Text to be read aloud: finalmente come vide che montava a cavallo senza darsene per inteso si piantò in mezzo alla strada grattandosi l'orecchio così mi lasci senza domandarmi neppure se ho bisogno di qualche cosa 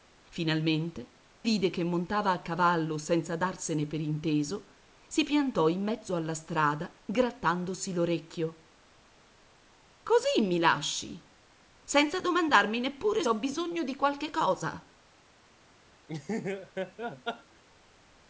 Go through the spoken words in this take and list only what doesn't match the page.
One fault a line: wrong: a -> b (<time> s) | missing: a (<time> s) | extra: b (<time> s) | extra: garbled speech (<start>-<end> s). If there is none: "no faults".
missing: come (1.1 s)
missing: se (13.2 s)